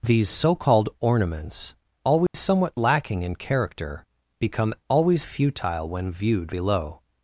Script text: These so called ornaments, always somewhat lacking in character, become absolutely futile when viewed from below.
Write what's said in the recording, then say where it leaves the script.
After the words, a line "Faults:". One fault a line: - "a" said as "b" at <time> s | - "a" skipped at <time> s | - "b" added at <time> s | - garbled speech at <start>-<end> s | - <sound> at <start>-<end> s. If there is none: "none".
These so called ornaments, always somewhat lacking in character, become always futile when viewed below.
Faults:
- dropout at 2.3-2.3 s
- "absolutely" said as "always" at 4.9 s
- "from" skipped at 6.5 s